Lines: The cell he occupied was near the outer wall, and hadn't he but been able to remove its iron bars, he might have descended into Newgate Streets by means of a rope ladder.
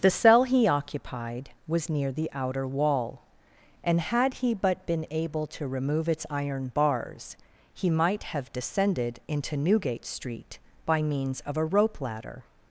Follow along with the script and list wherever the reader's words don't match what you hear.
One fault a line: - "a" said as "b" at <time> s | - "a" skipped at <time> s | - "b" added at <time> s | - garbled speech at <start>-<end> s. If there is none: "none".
- "hadn't" said as "had" at 4.0 s
- "Streets" said as "Street" at 10.1 s